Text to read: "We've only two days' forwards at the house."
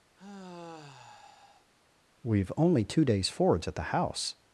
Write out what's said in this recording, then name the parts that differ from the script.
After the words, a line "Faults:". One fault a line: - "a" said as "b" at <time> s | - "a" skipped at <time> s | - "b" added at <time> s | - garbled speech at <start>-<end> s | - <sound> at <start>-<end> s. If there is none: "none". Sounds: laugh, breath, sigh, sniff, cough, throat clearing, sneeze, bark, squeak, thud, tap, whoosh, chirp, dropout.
"We've only two days' forwards at the house."
Faults:
- sigh at 0.2-1.7 s